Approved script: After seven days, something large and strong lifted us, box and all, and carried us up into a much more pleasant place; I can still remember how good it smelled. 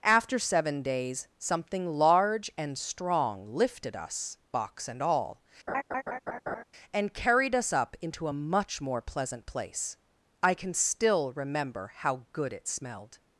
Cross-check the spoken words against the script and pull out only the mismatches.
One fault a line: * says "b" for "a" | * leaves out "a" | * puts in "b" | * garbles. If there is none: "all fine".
all fine